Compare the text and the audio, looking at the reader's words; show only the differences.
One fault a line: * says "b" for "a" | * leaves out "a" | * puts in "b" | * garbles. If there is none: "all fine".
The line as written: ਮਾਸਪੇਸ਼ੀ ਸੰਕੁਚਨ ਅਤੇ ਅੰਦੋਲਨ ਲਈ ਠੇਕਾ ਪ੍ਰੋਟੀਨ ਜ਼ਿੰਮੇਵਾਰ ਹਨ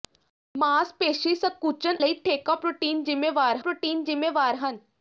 * says "ਲਈ ਠੇਕਾ ਪ੍ਰੋਟੀਨ ਜ਼ਿੰਮੇਵਾਰ" for "ਅਤੇ ਅੰਦੋਲਨ ਲਈ ਠੇਕਾ"